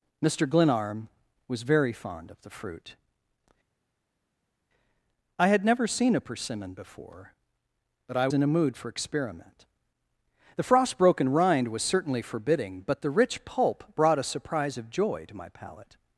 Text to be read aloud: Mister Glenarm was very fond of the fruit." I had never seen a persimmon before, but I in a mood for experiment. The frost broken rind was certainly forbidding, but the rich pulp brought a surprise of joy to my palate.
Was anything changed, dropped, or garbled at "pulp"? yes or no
no